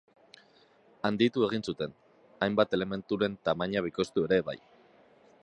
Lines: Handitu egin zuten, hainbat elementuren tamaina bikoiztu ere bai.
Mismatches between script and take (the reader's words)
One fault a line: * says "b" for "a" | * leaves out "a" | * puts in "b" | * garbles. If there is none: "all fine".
all fine